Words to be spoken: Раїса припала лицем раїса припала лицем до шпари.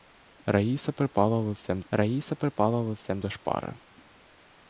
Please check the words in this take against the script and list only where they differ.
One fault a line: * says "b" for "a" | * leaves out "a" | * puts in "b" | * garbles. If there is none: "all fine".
all fine